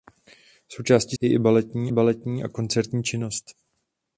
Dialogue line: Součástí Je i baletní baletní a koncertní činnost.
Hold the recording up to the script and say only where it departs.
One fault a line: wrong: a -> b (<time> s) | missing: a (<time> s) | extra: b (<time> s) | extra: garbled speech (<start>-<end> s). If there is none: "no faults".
no faults